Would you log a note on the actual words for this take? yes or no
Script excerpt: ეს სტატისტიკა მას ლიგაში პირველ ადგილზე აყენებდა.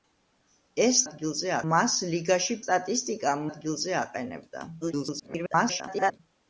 yes